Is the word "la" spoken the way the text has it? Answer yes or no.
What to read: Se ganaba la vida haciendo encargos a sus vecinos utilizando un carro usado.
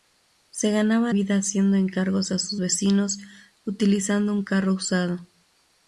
no